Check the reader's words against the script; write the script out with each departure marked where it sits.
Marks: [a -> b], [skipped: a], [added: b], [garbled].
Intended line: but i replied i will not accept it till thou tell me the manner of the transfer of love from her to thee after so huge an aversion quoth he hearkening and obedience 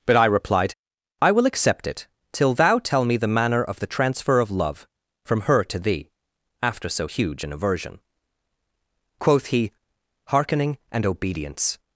but i replied i will [skipped: not] accept it till thou tell me the manner of the transfer of love from her to thee after so huge an aversion quoth he hearkening and obedience